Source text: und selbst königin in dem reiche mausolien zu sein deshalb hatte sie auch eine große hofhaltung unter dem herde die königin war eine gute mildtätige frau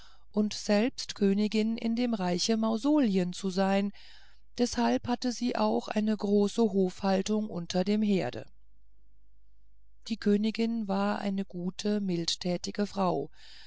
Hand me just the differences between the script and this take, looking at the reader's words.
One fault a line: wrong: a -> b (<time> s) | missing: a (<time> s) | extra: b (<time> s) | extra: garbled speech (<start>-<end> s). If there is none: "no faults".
no faults